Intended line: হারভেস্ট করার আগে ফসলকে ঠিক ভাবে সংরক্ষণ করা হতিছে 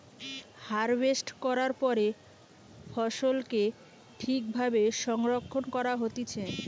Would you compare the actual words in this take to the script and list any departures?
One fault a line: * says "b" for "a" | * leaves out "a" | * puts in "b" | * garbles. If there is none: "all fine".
* says "পরে" for "আগে"